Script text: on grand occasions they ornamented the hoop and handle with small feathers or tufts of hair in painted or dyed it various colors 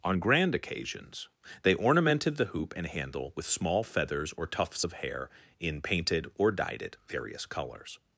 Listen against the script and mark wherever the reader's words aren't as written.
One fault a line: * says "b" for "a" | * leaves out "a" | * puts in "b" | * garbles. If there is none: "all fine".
all fine